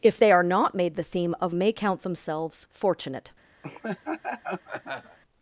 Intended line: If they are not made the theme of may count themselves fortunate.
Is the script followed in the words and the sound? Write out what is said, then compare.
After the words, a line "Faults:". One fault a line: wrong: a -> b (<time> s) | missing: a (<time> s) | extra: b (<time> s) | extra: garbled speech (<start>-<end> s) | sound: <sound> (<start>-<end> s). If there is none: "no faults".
If they are not made the theme of may count themselves fortunate.
Faults:
sound: laugh (3.6-5.2 s)